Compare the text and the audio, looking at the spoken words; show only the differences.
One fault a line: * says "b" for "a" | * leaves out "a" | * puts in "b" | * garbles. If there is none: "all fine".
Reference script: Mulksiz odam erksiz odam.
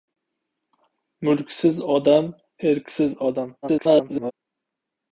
* garbles